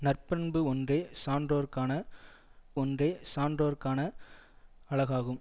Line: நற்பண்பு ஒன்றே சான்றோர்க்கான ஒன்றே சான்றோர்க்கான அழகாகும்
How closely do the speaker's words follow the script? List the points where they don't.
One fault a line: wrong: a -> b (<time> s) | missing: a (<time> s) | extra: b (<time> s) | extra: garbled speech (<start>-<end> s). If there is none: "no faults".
no faults